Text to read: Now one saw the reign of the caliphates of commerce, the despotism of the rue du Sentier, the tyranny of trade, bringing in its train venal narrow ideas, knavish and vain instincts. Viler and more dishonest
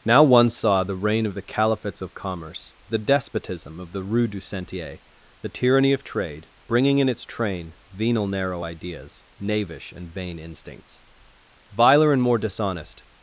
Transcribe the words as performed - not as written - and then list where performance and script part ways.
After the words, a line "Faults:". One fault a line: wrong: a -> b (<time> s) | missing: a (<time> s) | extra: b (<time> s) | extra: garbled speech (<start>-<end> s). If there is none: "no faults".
Now one saw the reign of the caliphates of commerce, the despotism of the rue du Sentier, the tyranny of trade, bringing in its train venal narrow ideas, knavish and vain instincts. Viler and more dishonest
Faults:
no faults